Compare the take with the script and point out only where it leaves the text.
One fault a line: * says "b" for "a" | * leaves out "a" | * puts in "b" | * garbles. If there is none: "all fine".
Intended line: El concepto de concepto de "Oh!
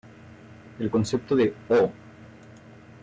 * leaves out "concepto de"